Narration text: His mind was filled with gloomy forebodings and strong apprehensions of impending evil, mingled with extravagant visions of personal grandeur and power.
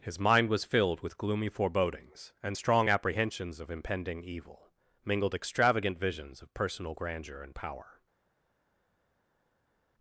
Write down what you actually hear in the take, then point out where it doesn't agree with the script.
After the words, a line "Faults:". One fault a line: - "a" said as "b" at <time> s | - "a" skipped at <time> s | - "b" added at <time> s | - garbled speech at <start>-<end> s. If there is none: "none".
His mind was filled with gloomy forebodings and strong apprehensions of impending evil, mingled extravagant visions of personal grandeur and power.
Faults:
- "with" skipped at 5.3 s